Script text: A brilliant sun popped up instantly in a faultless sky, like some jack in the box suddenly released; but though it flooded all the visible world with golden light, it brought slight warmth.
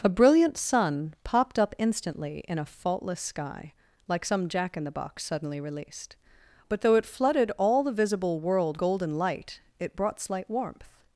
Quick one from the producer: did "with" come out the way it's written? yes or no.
no